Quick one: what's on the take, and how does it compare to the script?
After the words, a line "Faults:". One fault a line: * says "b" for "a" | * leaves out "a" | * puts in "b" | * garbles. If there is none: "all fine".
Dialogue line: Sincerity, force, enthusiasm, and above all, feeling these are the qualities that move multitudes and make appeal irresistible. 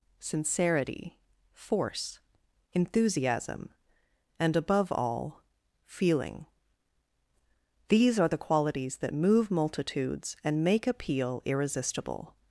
Sincerity, force, enthusiasm, and above all, feeling these are the qualities that move multitudes and make appeal irresistible.
Faults:
all fine